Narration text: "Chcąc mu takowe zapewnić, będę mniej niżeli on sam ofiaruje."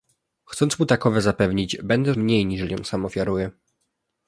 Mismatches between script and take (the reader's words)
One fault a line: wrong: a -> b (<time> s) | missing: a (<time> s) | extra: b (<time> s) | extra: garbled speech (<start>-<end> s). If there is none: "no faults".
no faults